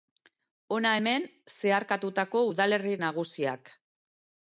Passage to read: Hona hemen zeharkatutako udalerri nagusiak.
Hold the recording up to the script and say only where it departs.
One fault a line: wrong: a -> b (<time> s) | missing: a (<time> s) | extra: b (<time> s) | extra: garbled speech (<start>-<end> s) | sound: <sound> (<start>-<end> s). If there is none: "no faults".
no faults